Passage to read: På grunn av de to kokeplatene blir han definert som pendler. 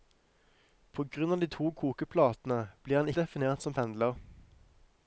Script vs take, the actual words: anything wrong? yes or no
no